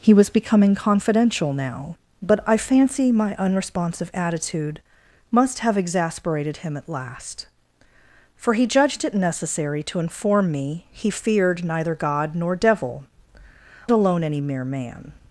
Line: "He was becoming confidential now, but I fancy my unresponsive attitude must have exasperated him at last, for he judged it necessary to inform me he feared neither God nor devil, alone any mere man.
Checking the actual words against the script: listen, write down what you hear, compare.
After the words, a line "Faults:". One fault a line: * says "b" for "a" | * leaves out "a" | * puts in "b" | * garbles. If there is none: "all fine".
"He was becoming confidential now, but I fancy my unresponsive attitude must have exasperated him at last, for he judged it necessary to inform me he feared neither God nor devil, alone any mere man.
Faults:
all fine